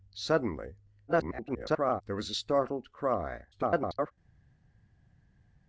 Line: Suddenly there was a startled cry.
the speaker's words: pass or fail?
fail